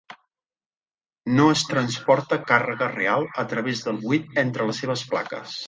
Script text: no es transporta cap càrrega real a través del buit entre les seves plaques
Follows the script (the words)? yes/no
no